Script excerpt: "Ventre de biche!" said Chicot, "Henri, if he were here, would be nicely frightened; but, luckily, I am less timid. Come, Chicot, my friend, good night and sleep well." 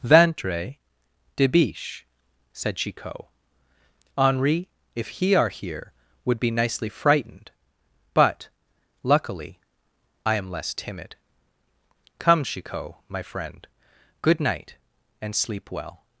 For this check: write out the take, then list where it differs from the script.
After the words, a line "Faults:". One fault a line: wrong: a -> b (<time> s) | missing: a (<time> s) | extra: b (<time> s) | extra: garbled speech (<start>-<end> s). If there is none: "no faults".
"Ventre de biche!" said Chicot, "Henri, if he are here, would be nicely frightened; but, luckily, I am less timid. Come, Chicot, my friend, good night and sleep well."
Faults:
wrong: were -> are (5.3 s)